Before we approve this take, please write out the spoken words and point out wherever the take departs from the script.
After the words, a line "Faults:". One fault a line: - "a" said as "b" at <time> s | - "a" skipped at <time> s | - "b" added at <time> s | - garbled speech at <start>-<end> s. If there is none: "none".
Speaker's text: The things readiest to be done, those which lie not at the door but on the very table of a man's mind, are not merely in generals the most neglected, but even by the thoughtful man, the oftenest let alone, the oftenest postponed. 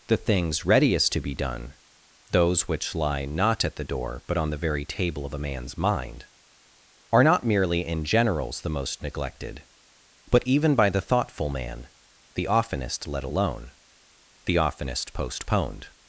The things readiest to be done, those which lie not at the door but on the very table of a man's mind, are not merely in generals the most neglected, but even by the thoughtful man, the oftenest let alone, the oftenest postponed.
Faults:
none